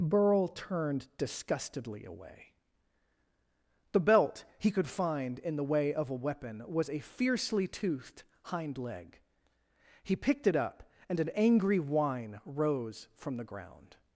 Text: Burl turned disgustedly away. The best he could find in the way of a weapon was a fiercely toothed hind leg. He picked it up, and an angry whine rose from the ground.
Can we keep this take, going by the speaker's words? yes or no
no